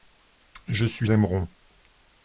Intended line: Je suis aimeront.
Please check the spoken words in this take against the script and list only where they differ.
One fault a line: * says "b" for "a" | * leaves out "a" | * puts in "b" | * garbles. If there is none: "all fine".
all fine